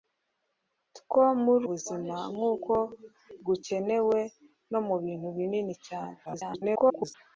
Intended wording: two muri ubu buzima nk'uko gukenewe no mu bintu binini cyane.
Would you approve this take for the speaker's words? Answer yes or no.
no